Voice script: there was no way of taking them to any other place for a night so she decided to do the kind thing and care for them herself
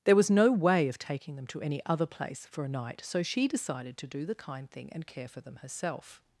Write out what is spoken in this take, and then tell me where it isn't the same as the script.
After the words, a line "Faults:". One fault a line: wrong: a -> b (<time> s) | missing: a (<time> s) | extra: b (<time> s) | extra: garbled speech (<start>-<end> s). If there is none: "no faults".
there was no way of taking them to any other place for a night so she decided to do the kind thing and care for them herself
Faults:
no faults